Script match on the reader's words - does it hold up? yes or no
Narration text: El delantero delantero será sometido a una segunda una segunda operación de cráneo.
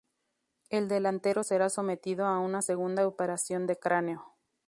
no